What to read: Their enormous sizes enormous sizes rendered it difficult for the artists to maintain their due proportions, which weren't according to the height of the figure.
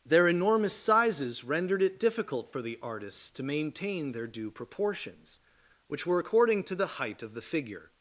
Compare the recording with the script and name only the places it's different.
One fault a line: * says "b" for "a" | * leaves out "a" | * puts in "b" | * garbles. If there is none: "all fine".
* leaves out "enormous sizes"
* says "were" for "weren't"